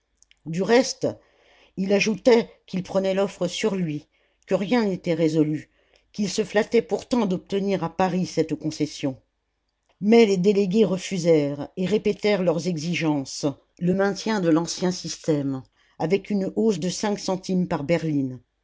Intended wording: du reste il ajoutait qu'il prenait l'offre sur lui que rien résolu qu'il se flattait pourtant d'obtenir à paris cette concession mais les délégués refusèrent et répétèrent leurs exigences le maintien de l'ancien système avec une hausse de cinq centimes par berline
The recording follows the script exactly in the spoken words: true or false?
false